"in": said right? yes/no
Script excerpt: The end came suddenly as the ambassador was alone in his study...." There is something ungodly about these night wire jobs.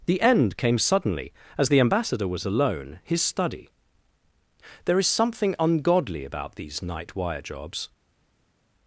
no